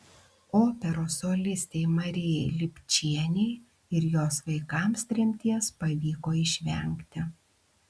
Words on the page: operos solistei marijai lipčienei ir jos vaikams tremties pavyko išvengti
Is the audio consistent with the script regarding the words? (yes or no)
yes